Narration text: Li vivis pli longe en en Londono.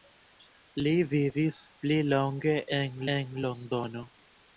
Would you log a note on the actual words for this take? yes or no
no